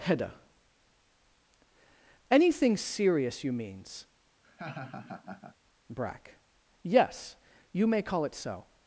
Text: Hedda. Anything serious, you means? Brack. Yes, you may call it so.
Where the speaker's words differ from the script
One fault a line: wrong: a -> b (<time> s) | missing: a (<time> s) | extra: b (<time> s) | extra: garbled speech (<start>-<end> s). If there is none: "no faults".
no faults